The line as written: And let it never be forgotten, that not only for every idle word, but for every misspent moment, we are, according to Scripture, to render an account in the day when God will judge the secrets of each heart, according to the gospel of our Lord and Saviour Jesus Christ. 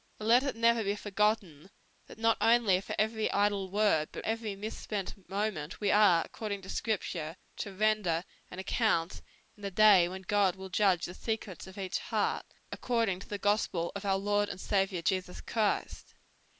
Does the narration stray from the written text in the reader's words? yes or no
yes